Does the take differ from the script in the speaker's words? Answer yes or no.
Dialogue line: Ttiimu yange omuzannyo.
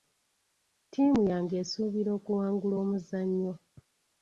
yes